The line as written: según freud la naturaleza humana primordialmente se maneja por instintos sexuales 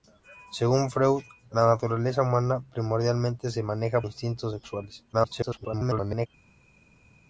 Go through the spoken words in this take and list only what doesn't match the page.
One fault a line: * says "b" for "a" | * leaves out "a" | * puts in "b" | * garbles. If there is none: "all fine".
* leaves out "por"
* garbles